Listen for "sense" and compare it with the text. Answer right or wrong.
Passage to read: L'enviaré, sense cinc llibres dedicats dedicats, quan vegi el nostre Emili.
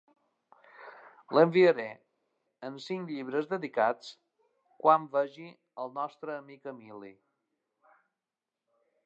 wrong